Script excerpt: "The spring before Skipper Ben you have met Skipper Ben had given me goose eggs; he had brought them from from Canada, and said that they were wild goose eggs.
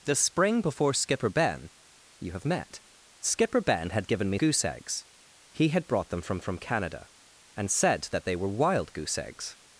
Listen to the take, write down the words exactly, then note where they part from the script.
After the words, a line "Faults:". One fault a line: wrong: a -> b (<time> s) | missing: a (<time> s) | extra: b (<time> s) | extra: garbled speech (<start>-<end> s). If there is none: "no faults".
"The spring before Skipper Ben you have met Skipper Ben had given me goose eggs; he had brought them from from Canada, and said that they were wild goose eggs.
Faults:
no faults